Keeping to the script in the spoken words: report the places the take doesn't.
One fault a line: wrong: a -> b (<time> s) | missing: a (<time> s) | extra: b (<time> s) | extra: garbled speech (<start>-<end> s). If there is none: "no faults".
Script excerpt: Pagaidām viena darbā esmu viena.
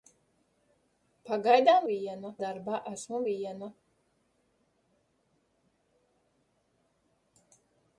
no faults